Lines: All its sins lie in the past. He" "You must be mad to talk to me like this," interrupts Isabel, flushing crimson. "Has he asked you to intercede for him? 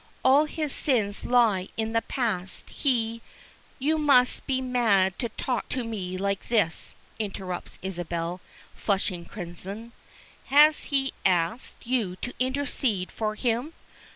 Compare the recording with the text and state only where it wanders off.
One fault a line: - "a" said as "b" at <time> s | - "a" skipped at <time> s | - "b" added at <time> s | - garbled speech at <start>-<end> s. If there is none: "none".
- "its" said as "his" at 0.5 s